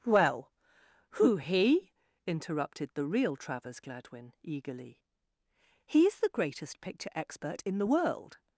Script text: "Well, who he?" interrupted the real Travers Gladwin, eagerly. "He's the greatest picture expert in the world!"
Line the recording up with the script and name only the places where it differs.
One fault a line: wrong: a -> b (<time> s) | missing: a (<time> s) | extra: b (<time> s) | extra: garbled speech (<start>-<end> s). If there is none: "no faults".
no faults